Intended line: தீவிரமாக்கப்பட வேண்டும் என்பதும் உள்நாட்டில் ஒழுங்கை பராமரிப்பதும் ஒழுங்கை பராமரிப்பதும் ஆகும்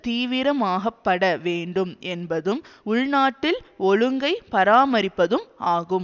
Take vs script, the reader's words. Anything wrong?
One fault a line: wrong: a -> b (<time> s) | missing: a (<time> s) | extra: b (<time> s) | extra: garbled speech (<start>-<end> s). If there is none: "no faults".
missing: ஒழுங்கை பராமரிப்பதும் (5.5 s)